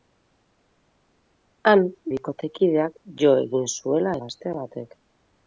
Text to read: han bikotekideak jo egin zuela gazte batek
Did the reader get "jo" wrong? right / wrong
right